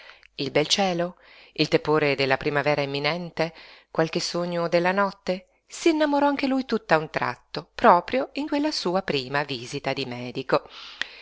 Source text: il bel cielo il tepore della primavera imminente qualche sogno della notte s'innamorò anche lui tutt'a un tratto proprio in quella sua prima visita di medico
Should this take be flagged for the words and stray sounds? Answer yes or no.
no